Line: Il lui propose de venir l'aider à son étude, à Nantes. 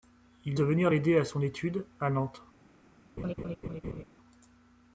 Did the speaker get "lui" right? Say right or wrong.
wrong